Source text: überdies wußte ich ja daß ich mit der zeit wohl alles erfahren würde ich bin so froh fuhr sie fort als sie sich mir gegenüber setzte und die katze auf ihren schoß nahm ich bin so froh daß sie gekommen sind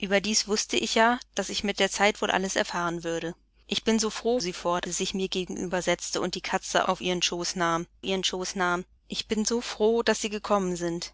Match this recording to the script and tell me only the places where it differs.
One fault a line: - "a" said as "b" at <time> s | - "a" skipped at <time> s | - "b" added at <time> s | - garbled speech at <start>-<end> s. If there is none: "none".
- "fuhr" skipped at 4.4 s
- "als" skipped at 4.9 s
- "ihren schoß nahm" added at 8.0 s